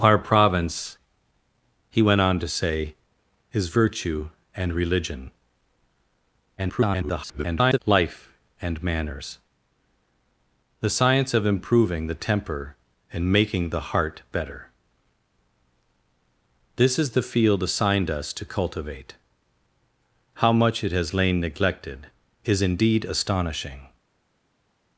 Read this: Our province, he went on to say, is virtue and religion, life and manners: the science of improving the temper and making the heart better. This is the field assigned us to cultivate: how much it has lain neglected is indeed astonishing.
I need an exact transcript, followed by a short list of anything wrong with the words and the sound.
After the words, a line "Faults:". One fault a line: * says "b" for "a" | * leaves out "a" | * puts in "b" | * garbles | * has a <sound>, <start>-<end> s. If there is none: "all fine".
Our province, he went on to say, is virtue and religion, [garbled] life and manners: the science of improving the temper and making the heart better. This is the field assigned us to cultivate: how much it has lain neglected is indeed astonishing.
Faults:
* garbles